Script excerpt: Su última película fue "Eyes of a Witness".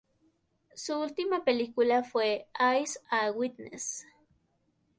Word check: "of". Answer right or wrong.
wrong